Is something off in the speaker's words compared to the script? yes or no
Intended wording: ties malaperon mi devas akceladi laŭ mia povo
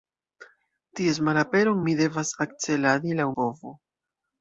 yes